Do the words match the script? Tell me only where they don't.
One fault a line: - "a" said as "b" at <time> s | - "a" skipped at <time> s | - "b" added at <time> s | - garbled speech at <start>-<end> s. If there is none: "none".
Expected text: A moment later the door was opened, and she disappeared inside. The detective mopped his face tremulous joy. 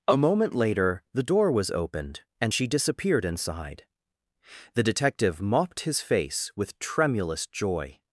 - "with" added at 6.5 s